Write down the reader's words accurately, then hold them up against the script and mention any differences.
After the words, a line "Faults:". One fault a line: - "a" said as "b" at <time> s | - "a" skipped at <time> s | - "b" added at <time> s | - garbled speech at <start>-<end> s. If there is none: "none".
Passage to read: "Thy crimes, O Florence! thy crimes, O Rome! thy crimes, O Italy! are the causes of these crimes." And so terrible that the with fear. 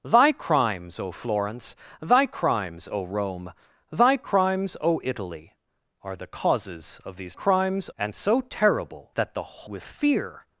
"Thy crimes, O Florence! thy crimes, O Rome! thy crimes, O Italy! are the causes of these crimes." And so terrible that the with fear.
Faults:
none